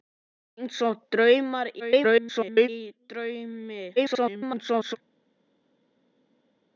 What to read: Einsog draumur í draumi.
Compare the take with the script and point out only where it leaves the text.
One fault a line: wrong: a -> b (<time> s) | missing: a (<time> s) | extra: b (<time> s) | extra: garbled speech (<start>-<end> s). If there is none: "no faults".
extra: garbled speech (1.8-2.7 s)
extra: garbled speech (4.0-5.0 s)